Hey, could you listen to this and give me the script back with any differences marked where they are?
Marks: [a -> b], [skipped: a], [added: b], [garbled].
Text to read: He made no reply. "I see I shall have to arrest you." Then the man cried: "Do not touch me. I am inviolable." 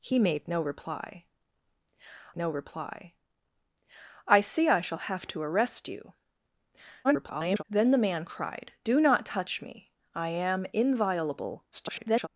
He made no reply. [added: no reply] "I see I shall have to arrest you." [garbled] Then the man cried: "Do not touch me. I am inviolable." [garbled]